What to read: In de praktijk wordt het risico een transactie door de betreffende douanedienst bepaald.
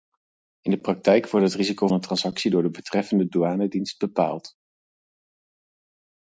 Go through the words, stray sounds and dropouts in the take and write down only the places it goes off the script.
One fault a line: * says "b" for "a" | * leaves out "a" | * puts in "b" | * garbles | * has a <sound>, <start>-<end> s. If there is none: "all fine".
all fine